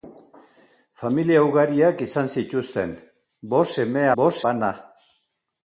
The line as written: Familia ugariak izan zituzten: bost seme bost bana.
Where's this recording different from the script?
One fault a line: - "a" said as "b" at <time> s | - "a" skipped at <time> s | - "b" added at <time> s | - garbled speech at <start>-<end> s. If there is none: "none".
none